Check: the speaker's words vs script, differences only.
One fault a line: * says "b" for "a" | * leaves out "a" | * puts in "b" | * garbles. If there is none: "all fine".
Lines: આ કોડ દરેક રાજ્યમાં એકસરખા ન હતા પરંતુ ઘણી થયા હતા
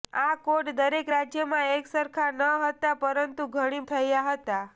all fine